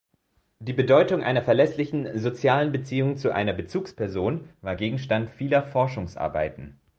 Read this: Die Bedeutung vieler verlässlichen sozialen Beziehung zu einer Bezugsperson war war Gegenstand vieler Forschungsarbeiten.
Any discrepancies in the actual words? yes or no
yes